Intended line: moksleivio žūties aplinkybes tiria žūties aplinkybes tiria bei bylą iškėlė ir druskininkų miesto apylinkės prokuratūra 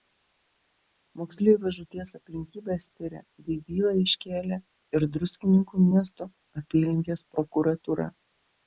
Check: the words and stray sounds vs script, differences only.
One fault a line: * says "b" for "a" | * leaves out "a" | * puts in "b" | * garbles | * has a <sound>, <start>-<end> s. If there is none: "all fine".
* leaves out "žūties aplinkybes tiria"